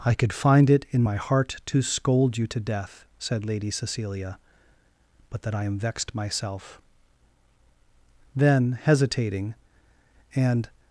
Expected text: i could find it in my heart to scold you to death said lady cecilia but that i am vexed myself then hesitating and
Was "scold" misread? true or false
false